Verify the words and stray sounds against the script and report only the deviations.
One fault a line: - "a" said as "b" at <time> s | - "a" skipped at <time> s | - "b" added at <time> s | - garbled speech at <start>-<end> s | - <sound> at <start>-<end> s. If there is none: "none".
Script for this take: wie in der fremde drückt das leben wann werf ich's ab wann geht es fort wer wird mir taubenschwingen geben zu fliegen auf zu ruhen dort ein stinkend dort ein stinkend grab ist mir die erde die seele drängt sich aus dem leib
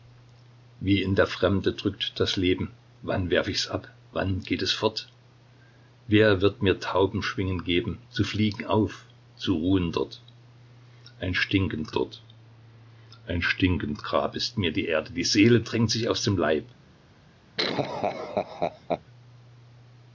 - laugh at 17.6-19.0 s